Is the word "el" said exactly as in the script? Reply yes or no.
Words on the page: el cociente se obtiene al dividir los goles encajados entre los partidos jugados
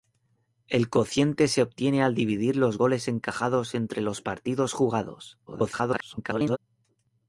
yes